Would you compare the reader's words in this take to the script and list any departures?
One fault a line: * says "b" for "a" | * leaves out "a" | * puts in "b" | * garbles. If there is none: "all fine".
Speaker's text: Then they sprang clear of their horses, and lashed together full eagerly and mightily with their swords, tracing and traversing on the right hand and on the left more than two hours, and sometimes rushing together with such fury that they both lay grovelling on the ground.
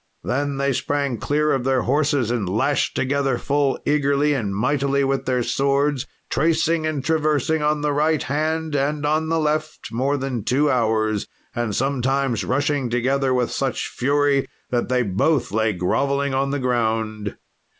all fine